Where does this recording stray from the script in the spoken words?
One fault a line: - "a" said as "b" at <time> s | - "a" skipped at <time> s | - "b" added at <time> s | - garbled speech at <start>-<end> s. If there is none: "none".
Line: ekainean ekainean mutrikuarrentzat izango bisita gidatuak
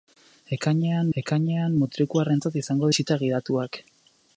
none